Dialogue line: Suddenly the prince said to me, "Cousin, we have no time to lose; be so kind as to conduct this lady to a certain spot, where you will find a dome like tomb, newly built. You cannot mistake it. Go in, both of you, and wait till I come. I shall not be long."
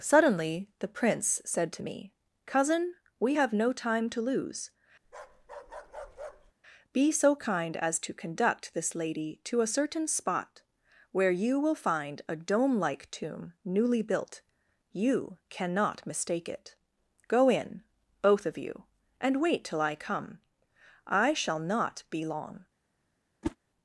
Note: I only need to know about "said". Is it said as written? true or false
true